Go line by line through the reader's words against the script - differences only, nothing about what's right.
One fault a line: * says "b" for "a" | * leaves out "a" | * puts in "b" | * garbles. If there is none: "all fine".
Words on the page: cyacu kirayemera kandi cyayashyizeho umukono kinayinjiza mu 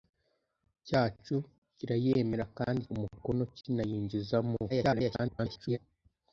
* leaves out "cyayashyizeho"
* garbles